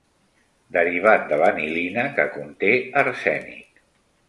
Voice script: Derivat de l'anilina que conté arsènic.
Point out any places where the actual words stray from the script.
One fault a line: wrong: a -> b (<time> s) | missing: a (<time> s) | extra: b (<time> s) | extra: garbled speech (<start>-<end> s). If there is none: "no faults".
no faults